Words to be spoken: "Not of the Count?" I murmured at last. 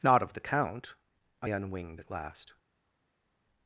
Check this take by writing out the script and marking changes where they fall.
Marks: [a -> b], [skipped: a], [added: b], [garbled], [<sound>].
"Not of the Count?" I [murmured -> unwinged] at last.